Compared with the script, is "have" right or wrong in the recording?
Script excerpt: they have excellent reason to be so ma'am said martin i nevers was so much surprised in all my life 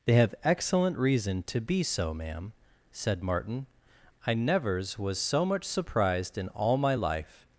right